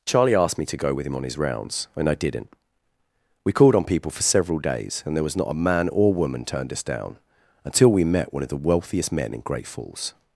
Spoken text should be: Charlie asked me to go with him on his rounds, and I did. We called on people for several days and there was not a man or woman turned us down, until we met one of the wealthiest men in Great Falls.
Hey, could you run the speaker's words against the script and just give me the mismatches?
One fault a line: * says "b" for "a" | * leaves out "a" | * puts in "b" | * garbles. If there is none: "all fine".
* says "didn't" for "did"